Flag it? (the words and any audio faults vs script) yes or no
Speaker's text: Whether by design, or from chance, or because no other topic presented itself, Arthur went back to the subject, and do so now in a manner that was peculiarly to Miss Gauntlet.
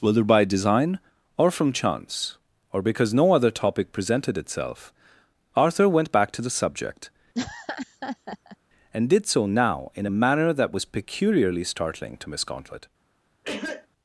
yes